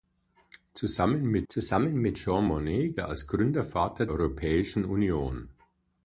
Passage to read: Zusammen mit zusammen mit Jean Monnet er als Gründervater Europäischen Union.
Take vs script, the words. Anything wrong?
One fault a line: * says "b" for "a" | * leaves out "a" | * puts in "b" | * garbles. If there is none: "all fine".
all fine